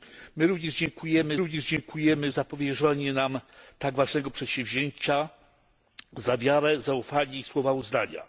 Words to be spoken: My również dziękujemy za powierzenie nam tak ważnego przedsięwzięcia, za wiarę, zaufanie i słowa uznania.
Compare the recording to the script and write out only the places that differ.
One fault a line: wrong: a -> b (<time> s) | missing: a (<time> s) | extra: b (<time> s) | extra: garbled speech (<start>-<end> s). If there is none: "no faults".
extra: również dziękujemy (1.4 s)